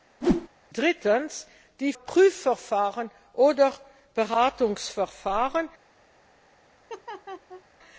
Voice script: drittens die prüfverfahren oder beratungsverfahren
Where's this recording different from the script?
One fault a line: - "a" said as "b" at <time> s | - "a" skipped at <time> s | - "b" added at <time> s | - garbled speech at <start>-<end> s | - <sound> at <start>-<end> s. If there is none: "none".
- whoosh at 0.2-0.5 s
- laugh at 6.9-7.6 s